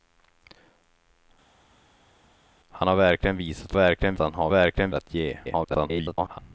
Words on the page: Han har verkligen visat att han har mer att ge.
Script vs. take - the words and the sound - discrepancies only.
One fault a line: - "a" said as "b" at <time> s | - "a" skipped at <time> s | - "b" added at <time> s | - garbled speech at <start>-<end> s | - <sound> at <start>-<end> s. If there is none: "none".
- "att" said as "verkligen" at 3.7 s
- "mer" said as "verkligen" at 4.5 s
- garbled speech at 5.4-6.4 s